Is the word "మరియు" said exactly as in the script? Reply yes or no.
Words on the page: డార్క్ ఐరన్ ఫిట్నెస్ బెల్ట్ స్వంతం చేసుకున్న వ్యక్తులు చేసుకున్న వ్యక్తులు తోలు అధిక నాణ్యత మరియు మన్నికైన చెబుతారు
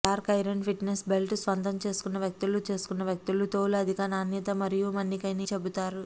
yes